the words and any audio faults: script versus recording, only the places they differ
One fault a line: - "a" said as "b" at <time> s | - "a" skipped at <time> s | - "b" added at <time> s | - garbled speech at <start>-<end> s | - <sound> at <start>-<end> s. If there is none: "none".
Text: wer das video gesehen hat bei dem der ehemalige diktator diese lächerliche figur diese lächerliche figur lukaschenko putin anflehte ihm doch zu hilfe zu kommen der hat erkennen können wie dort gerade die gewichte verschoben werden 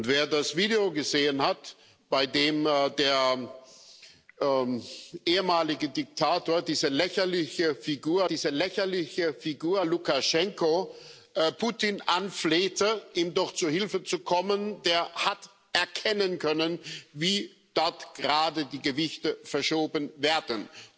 none